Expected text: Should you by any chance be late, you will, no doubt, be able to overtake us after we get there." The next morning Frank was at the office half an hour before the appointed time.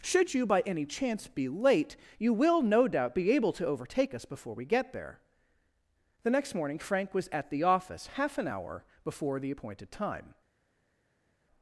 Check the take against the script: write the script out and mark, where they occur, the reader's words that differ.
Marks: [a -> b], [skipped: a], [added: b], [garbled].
Should you by any chance be late, you will, no doubt, be able to overtake us [after -> before] we get there." The next morning Frank was at the office half an hour before the appointed time.